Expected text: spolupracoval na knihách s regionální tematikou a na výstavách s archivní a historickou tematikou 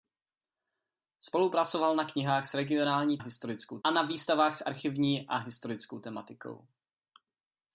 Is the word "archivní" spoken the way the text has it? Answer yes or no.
yes